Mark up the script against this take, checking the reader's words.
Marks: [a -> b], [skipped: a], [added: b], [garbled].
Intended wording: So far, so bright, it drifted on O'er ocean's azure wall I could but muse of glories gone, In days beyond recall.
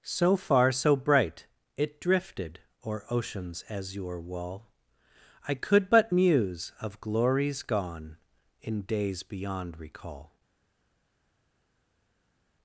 So far, so bright, it drifted [skipped: on] O'er ocean's azure wall I could but muse of glories gone, In days beyond recall.